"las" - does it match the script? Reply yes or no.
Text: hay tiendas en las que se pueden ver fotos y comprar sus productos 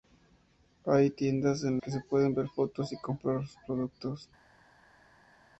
no